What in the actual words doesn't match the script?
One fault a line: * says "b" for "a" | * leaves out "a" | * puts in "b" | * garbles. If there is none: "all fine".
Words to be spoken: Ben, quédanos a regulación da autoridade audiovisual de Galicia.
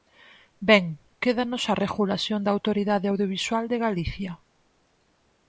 all fine